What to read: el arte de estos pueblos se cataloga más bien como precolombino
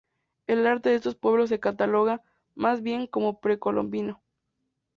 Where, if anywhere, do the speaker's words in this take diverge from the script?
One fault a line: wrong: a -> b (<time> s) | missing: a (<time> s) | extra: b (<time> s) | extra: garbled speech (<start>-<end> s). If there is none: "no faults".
no faults